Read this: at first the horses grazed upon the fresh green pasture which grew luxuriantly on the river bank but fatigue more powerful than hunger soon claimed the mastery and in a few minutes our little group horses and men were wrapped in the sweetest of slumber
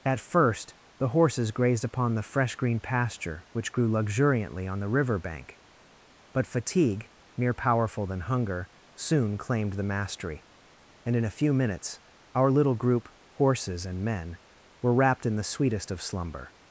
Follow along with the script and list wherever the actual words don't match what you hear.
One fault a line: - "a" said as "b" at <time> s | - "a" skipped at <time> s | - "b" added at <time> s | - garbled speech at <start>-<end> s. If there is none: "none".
- "more" said as "mere" at 7.4 s